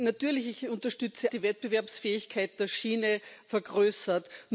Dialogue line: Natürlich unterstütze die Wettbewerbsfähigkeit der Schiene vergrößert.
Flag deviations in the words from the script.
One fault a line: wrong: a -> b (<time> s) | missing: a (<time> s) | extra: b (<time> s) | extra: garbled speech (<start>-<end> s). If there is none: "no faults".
no faults